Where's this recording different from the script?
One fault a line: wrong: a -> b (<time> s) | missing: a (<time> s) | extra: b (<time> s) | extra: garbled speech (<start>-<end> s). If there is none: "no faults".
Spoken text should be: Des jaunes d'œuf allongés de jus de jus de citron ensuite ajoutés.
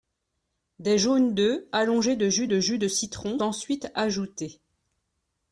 no faults